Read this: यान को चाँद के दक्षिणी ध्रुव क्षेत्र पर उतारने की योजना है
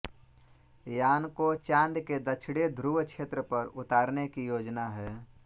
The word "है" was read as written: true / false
true